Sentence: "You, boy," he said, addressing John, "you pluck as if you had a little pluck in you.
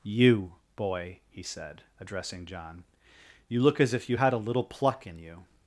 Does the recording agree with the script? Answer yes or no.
no